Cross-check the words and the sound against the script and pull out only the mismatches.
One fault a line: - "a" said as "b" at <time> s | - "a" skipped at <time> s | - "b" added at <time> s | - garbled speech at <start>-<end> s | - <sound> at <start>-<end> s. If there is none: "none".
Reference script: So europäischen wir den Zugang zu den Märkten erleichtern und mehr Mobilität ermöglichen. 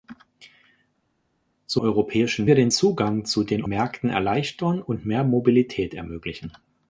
none